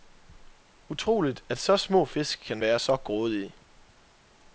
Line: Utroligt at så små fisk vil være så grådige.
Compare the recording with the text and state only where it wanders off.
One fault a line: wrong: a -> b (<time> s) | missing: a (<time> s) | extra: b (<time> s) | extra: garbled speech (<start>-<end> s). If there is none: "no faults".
wrong: vil -> kan (2.5 s)